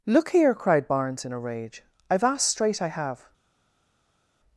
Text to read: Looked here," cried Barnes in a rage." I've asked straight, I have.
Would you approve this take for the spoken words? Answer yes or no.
no